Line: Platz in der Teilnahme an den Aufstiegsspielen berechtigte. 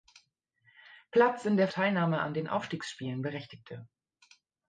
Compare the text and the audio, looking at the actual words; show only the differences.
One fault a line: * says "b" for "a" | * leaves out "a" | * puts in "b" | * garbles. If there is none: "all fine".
all fine